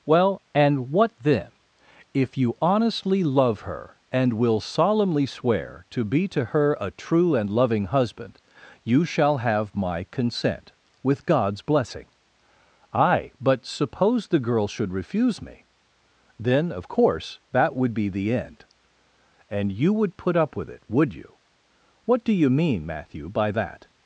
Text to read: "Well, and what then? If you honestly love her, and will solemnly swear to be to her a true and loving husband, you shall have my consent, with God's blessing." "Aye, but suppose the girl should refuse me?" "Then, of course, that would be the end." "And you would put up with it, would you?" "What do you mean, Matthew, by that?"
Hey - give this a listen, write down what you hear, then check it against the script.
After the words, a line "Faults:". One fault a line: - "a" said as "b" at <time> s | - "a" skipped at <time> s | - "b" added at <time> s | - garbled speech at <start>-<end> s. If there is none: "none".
"Well, and what then? If you honestly love her, and will solemnly swear to be to her a true and loving husband, you shall have my consent, with God's blessing." "Aye, but suppose the girl should refuse me?" "Then, of course, that would be the end." "And you would put up with it, would you?" "What do you mean, Matthew, by that?"
Faults:
none